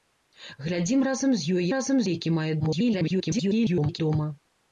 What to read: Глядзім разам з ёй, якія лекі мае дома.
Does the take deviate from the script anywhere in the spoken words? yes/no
yes